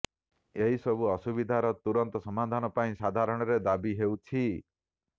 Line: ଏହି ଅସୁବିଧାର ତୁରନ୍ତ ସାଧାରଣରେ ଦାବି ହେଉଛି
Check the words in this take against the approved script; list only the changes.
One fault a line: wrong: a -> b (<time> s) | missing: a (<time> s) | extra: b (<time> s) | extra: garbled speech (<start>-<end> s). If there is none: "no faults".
extra: ସବୁ (0.8 s)
extra: ସମାଧାନ ପାଇଁ (2.2 s)